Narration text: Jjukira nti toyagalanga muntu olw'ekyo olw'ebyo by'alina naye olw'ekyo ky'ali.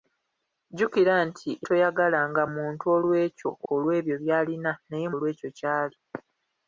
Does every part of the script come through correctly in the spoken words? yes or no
yes